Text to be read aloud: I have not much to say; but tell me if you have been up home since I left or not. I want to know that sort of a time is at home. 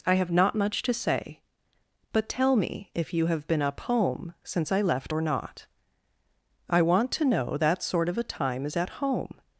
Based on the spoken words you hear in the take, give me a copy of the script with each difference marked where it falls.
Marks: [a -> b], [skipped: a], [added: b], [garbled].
I have not much to say; but tell me if you have been up home since I left or not. I want to know that sort of a time is at home.